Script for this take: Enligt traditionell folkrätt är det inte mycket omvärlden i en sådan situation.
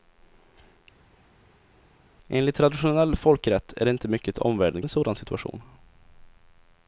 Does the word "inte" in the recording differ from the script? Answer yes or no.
no